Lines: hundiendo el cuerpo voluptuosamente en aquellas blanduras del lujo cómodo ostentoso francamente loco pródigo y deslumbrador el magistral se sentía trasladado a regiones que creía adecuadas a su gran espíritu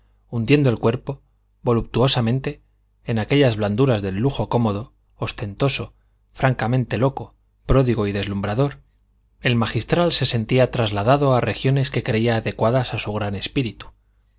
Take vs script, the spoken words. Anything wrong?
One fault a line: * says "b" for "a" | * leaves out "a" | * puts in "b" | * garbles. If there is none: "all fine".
all fine